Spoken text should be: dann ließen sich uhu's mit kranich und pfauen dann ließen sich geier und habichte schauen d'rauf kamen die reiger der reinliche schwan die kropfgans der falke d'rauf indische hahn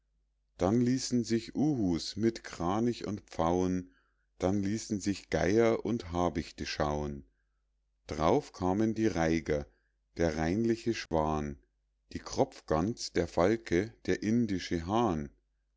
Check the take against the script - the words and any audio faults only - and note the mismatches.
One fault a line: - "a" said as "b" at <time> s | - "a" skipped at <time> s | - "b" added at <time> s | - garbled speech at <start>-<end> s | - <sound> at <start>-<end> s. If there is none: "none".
- dropout at 11.1-11.1 s
- "d'rauf" said as "der" at 14.0 s